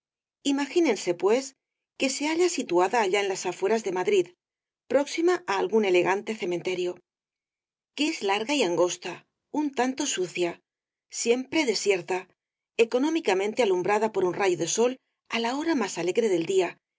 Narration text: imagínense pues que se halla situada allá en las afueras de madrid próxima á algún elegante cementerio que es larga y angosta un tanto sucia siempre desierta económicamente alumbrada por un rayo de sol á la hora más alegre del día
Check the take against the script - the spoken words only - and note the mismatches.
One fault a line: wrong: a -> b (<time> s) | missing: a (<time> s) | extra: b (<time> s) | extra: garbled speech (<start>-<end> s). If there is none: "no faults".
no faults